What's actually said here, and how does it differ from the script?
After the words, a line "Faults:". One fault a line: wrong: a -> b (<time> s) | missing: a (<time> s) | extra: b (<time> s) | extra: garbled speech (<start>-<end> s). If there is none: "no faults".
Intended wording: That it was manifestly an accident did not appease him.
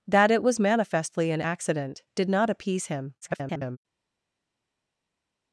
That it was manifestly an accident did not appease him. [garbled]
Faults:
extra: garbled speech (3.2-3.8 s)